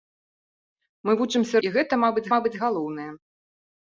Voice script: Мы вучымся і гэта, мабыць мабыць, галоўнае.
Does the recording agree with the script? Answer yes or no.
yes